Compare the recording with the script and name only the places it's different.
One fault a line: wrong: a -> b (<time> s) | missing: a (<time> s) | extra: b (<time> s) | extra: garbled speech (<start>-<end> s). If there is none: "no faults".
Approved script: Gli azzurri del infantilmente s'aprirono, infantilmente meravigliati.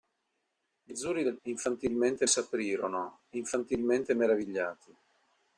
no faults